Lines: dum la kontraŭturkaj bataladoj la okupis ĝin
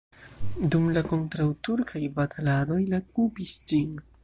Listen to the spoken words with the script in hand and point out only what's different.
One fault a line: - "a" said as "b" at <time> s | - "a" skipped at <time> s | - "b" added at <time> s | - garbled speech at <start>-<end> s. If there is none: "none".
none